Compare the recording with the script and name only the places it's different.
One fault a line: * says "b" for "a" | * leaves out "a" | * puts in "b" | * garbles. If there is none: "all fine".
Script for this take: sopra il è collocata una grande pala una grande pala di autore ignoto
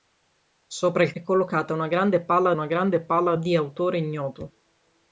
all fine